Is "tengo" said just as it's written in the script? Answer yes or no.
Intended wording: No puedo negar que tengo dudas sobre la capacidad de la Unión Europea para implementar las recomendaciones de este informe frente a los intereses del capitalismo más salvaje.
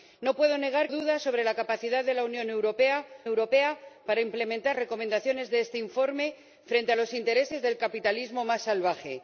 no